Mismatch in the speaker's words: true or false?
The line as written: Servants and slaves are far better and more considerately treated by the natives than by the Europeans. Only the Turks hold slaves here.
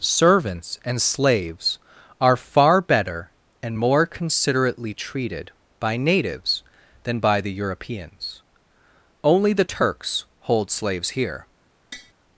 true